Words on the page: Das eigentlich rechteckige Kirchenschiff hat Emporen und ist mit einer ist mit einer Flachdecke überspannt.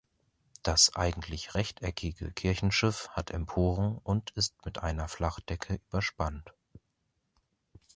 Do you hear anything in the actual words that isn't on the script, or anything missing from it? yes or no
yes